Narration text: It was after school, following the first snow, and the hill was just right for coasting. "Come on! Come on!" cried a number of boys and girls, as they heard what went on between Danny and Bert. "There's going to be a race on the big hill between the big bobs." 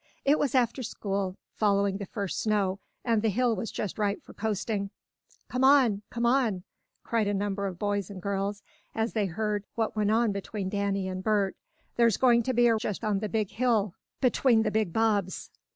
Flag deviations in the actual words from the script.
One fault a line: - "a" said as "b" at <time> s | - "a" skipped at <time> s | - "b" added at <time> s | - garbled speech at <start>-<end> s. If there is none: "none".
- "race" said as "just" at 12.8 s